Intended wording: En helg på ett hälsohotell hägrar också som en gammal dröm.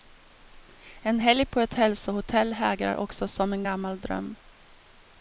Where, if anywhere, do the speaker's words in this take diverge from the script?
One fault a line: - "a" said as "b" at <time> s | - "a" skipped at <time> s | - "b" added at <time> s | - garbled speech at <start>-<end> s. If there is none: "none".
none